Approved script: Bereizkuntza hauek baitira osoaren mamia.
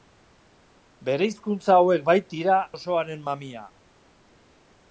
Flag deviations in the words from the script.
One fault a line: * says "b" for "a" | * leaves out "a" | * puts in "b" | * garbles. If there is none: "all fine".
all fine